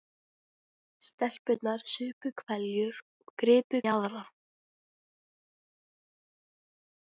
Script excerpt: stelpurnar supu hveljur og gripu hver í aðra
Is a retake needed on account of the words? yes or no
yes